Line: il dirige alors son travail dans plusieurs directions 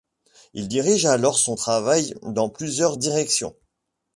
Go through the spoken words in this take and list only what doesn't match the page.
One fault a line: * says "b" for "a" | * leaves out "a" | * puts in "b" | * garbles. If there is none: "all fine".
all fine